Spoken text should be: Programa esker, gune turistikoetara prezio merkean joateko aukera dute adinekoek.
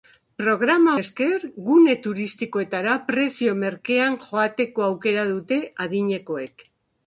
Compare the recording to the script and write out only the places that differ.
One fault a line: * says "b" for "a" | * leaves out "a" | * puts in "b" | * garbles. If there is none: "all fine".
all fine